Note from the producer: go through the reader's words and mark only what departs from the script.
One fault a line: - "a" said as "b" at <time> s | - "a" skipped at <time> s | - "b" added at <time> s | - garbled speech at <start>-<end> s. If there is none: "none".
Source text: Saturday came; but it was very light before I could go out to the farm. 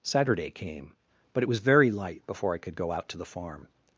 none